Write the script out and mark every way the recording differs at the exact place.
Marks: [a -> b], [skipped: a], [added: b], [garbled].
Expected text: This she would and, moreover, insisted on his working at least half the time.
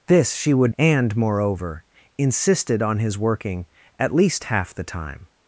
This she would and, moreover, insisted on his working at least half the time.